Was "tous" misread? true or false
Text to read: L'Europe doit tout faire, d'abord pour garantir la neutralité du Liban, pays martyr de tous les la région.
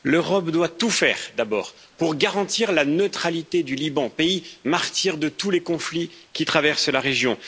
false